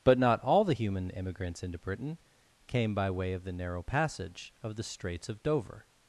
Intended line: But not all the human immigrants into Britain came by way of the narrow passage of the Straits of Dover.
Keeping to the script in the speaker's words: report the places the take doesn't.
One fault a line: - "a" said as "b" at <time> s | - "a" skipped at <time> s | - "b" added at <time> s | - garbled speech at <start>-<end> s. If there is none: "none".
none